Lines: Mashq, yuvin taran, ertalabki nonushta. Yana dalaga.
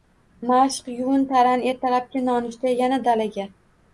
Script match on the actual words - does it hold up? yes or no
yes